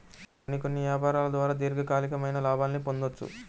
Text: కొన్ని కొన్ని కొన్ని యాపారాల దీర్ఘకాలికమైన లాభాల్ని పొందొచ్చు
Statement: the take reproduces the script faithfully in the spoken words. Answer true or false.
false